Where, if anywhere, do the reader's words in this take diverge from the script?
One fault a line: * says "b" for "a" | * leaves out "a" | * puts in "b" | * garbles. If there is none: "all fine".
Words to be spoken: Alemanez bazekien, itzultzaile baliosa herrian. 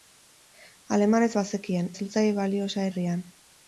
all fine